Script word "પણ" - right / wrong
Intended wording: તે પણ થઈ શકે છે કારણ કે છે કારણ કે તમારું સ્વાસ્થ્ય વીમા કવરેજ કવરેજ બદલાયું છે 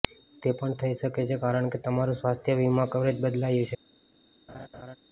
right